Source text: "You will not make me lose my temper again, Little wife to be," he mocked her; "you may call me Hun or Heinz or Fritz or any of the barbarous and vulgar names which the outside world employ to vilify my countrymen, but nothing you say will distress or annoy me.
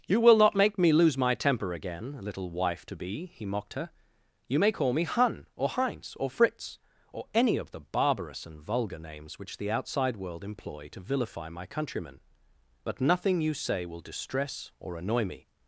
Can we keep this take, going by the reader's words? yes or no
yes